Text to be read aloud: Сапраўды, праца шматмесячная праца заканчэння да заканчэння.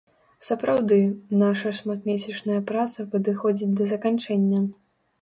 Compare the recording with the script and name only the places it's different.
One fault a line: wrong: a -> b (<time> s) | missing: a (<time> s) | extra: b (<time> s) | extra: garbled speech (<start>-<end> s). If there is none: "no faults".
wrong: праца -> наша (1.4 s)
wrong: заканчэння -> падыходзіць (3.1 s)